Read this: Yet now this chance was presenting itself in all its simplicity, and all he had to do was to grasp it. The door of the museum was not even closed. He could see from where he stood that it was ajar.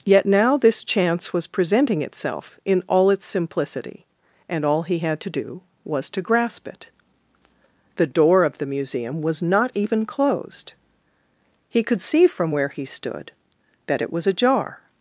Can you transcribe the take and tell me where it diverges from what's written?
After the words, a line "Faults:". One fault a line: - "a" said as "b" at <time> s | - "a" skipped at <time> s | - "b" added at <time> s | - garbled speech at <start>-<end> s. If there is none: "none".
Yet now this chance was presenting itself in all its simplicity, and all he had to do was to grasp it. The door of the museum was not even closed. He could see from where he stood that it was ajar.
Faults:
none